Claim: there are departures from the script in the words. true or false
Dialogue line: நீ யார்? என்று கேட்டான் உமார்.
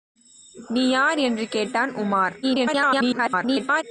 true